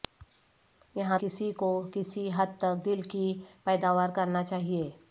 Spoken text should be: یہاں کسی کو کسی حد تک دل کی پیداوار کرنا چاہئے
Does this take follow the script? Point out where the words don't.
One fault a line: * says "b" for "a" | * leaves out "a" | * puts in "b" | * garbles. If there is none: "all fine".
all fine